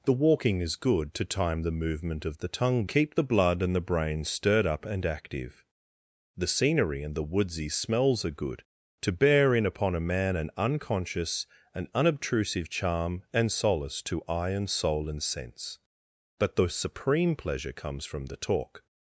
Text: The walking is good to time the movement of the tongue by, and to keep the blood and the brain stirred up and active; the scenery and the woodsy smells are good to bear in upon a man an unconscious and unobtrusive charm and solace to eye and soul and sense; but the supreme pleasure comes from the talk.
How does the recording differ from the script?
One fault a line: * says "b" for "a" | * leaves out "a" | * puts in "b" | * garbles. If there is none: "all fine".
* leaves out "by and to"